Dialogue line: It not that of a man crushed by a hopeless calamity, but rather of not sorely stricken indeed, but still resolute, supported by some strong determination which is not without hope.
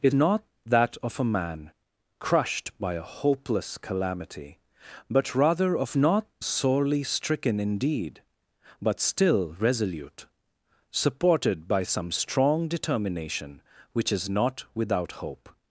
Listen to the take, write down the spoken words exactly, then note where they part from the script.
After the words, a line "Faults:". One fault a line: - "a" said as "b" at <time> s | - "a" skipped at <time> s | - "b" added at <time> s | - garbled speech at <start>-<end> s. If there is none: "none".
It not that of a man crushed by a hopeless calamity, but rather of not sorely stricken indeed, but still resolute, supported by some strong determination which is not without hope.
Faults:
none